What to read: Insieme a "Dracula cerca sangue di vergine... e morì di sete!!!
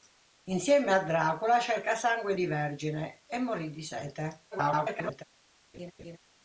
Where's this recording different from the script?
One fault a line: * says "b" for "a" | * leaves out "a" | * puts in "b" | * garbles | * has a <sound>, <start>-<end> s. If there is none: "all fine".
* garbles
* has a laugh, 5.7-6.2 s